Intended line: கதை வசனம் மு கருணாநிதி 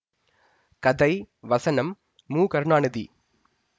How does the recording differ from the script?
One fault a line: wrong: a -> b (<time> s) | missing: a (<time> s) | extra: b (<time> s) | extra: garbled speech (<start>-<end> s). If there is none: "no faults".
no faults